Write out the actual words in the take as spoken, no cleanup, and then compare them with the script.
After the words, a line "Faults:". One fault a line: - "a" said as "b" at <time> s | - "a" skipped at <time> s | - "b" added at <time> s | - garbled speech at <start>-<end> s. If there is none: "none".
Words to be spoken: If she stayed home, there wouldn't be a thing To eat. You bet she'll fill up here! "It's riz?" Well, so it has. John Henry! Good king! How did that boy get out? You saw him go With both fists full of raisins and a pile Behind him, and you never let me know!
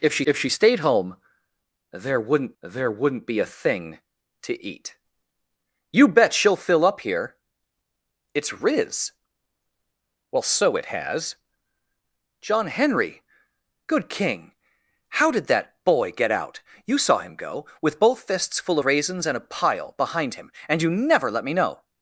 If she if she stayed home, there wouldn't there wouldn't be a thing To eat. You bet she'll fill up here! "It's riz?" Well, so it has. John Henry! Good king! How did that boy get out? You saw him go With both fists full raisins and a pile Behind him, and you never let me know!
Faults:
- "if she" added at 0.2 s
- "there wouldn't" added at 2.6 s
- "of" skipped at 18.8 s